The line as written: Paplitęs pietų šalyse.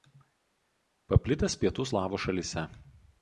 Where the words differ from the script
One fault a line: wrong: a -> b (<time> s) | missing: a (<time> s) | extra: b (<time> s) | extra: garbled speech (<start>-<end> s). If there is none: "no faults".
extra: slavų (1.9 s)